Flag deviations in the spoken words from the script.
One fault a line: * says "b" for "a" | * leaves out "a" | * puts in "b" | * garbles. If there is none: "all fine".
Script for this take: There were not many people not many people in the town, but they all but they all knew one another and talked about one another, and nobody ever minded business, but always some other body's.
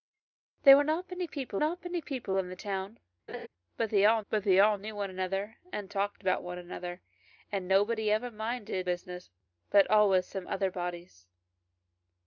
all fine